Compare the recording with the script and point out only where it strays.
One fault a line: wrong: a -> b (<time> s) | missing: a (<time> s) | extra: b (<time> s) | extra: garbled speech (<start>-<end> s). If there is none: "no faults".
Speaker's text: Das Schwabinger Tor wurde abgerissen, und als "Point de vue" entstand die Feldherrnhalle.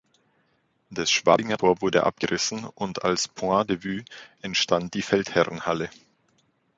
no faults